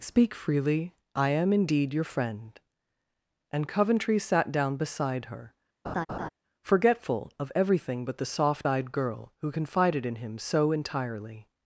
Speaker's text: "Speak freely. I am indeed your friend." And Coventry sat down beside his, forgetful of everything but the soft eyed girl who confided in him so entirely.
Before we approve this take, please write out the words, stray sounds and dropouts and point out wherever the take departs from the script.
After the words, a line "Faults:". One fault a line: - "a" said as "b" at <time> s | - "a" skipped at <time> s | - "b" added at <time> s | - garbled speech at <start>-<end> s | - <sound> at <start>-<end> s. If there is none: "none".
"Speak freely. I am indeed your friend." And Coventry sat down beside her, forgetful of everything but the soft eyed girl who confided in him so entirely.
Faults:
- "his" said as "her" at 5.2 s
- laugh at 5.8-6.3 s